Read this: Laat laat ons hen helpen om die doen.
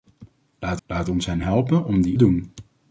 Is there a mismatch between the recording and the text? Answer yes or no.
no